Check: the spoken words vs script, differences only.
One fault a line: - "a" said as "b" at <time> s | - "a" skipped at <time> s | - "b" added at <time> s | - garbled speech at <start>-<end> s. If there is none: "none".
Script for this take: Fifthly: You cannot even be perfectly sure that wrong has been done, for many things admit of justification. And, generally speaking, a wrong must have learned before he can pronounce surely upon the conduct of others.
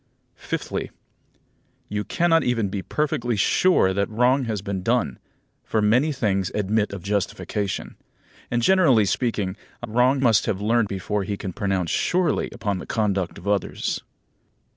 none